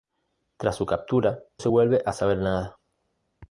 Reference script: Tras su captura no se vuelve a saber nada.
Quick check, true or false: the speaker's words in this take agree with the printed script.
false